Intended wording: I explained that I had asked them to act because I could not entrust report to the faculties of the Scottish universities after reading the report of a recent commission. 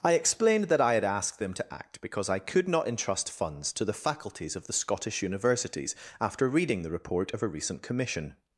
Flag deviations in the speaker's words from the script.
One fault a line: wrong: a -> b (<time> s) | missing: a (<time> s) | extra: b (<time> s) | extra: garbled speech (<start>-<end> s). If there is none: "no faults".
wrong: report -> funds (3.3 s)